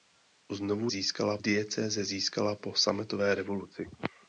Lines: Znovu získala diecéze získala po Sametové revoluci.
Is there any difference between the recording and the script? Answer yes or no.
no